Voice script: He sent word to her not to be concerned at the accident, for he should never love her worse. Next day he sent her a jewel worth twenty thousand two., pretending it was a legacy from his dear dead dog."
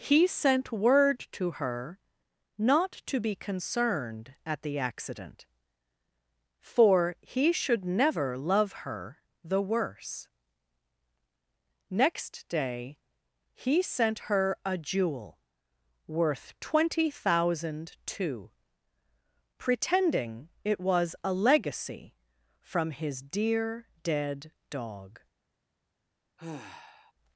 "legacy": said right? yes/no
yes